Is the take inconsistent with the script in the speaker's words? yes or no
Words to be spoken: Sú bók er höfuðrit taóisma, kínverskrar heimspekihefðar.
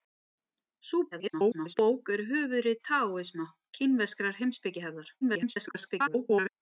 yes